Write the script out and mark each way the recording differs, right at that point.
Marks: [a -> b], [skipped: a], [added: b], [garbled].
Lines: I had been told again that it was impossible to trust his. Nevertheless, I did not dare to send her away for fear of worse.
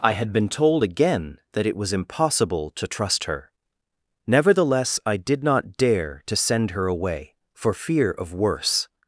I had been told again that it was impossible to trust [his. -> her] Nevertheless, I did not dare to send her away for fear of worse.